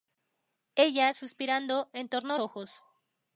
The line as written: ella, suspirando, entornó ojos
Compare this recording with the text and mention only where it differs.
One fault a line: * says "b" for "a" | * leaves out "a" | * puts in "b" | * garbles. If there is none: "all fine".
all fine